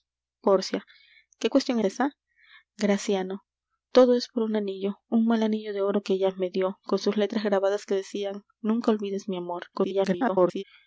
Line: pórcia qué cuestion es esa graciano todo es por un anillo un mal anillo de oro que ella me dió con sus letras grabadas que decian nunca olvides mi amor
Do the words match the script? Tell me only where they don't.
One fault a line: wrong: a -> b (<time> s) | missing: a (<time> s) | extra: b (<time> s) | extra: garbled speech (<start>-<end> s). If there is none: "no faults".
missing: es (1.8 s)
extra: garbled speech (9.7-10.6 s)